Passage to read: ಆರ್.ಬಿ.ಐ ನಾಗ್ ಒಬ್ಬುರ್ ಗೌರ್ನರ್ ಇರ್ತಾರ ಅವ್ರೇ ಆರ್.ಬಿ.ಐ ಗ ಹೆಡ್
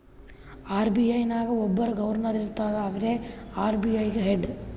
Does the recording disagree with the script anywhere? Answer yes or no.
no